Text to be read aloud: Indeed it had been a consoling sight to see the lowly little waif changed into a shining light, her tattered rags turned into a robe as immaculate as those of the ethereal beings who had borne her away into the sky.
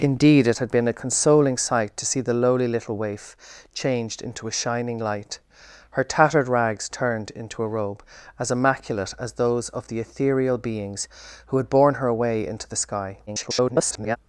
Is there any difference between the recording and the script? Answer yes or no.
yes